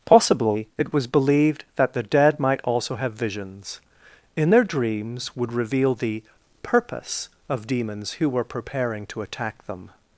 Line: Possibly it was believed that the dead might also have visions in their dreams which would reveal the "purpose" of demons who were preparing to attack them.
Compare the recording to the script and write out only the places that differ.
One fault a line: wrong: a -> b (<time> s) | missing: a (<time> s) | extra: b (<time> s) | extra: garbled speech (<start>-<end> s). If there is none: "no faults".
missing: which (5.3 s)